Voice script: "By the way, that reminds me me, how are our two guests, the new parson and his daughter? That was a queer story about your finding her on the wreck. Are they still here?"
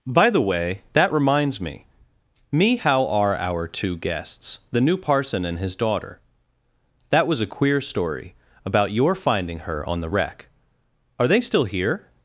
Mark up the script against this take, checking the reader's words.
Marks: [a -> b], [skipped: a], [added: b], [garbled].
"By the way, that reminds me me, how are our two guests, the new parson and his daughter? That was a queer story about your finding her on the wreck. Are they still here?"